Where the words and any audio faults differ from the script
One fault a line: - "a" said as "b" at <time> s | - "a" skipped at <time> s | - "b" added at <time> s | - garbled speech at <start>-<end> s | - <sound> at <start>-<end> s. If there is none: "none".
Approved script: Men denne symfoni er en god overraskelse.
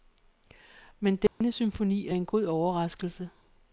- dropout at 1.3-1.4 s